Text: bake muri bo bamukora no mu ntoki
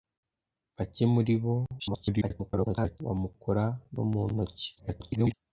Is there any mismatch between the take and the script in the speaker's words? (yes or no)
yes